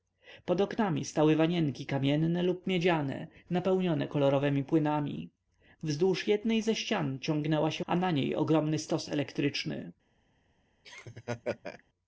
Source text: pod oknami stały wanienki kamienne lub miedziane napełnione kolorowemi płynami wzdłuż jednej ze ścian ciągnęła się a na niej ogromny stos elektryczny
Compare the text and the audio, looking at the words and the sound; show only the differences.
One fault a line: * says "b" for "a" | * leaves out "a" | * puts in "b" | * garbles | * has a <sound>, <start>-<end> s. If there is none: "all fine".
* has a laugh, 10.8-11.8 s